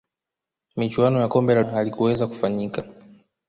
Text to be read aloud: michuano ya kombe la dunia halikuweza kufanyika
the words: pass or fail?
fail